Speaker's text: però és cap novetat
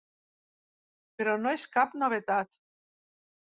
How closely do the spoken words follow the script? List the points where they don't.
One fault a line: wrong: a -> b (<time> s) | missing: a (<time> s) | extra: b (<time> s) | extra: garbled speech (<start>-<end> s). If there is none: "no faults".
extra: no (1.4 s)